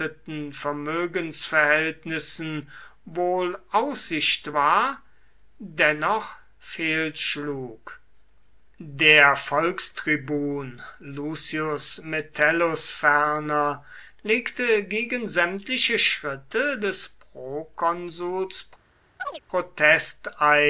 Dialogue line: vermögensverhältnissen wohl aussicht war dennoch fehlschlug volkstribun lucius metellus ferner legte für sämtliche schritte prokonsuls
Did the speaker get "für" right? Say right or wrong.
wrong